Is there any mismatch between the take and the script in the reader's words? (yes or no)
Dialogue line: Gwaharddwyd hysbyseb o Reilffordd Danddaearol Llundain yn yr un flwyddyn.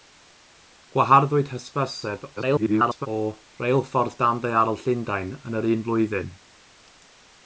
yes